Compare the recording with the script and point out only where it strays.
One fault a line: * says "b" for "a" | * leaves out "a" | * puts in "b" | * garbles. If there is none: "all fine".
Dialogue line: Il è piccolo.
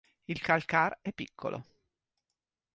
* puts in "calcar"